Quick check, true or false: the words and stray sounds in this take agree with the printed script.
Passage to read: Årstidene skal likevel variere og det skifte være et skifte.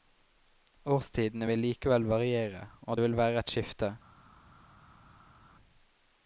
false